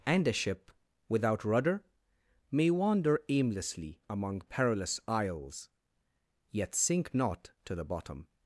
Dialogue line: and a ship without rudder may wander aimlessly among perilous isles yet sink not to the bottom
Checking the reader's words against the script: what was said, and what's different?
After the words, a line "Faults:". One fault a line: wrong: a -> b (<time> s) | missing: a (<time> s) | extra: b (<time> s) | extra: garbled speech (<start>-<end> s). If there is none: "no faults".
and a ship without rudder may wander aimlessly among perilous isles yet sink not to the bottom
Faults:
no faults